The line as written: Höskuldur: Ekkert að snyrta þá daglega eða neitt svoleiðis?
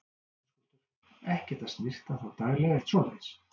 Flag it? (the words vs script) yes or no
yes